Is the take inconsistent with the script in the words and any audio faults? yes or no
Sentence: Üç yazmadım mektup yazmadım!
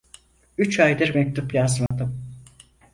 yes